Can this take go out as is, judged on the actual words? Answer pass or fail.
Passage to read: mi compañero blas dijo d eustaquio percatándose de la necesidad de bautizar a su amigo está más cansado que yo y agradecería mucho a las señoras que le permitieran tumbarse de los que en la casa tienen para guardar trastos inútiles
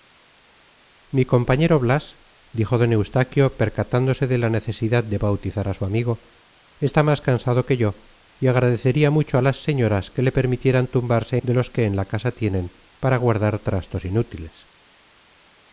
pass